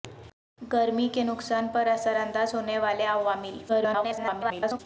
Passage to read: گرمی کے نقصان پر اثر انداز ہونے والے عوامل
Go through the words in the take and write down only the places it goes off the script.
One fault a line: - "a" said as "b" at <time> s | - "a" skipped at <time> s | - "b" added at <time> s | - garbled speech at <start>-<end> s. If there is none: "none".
- garbled speech at 3.7-4.8 s